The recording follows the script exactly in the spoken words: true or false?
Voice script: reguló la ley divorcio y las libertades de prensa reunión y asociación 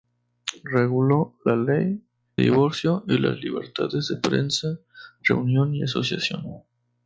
true